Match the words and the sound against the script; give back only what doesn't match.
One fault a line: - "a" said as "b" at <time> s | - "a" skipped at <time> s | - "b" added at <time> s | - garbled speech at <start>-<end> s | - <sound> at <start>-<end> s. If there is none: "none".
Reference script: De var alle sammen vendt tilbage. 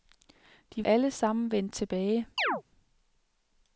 - "var" skipped at 0.8 s
- chirp at 2.4-2.6 s